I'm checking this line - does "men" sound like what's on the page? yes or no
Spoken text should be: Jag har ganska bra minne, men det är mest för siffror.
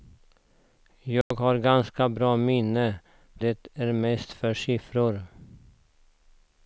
no